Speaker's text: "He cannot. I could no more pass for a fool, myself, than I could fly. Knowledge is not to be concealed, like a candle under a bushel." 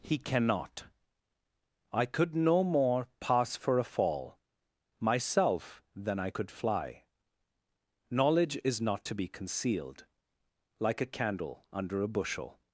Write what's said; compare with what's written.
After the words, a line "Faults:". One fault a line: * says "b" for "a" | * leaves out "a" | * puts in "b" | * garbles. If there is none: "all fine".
"He cannot. I could no more pass for a fall, myself, than I could fly. Knowledge is not to be concealed, like a candle under a bushel."
Faults:
* says "fall" for "fool"